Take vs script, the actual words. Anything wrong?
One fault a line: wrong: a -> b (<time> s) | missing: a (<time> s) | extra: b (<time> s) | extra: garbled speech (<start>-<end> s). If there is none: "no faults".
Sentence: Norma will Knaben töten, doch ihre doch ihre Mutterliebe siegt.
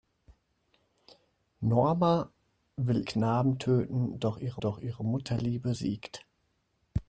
no faults